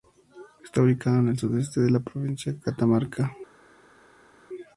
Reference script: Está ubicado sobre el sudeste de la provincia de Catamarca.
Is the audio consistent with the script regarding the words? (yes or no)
no